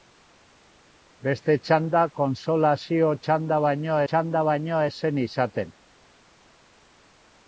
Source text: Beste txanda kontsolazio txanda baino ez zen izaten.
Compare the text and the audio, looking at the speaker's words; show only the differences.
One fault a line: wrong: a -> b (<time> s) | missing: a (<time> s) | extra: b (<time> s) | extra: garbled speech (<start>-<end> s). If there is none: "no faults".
extra: txanda baino (4.1 s)